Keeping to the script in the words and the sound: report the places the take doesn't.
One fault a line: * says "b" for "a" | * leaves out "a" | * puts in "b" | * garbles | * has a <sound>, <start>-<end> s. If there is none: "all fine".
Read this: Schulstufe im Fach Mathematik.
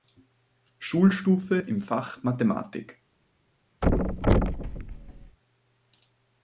* has a thud, 3.8-5.4 s